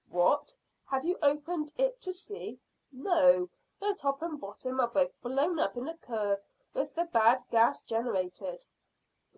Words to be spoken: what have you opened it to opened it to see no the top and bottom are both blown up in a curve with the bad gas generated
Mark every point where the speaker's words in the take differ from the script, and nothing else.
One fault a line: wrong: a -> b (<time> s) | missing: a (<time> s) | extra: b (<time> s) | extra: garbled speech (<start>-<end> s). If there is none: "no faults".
missing: opened it to (2.1 s)